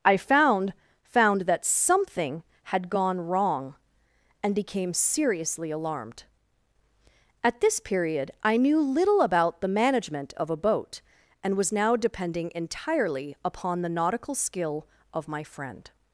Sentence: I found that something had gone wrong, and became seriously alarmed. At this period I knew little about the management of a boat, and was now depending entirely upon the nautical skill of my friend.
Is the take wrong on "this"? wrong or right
right